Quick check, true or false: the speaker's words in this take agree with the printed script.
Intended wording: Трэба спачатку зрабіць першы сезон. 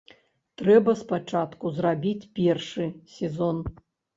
true